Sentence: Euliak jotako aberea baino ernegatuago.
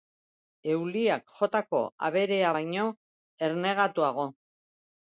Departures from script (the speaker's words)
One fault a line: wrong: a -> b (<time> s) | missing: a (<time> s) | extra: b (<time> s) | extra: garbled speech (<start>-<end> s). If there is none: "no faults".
no faults